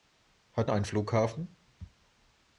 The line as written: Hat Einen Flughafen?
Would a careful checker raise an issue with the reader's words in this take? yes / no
no